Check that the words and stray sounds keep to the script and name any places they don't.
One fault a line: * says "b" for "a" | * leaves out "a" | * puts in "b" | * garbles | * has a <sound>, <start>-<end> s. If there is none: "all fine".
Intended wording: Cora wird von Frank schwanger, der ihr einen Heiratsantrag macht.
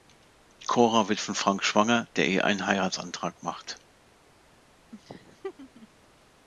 * has a laugh, 4.9-5.9 s